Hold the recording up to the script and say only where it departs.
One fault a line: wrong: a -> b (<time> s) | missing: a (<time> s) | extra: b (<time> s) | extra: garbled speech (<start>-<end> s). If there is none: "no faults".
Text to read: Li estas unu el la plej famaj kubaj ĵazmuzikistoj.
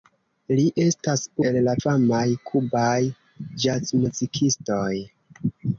missing: unu (1.2 s)
missing: plej (1.8 s)